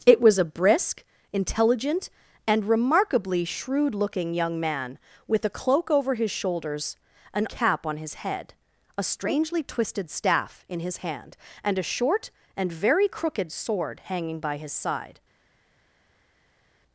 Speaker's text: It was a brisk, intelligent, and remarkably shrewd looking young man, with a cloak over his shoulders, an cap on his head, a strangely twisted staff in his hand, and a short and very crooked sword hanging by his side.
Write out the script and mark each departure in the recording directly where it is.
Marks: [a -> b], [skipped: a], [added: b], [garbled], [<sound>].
It was a brisk, intelligent, and remarkably shrewd looking young man, with a cloak over his shoulders, an cap on his head, a strangely twisted staff in his hand, and a short and very crooked sword hanging by his side.